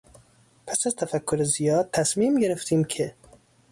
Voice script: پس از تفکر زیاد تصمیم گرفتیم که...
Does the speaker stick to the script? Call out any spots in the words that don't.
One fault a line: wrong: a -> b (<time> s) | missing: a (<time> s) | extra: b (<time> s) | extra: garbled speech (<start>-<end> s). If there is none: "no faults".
no faults